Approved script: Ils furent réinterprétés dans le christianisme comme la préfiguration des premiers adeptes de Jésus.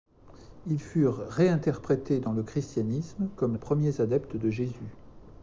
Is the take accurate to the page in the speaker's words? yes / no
no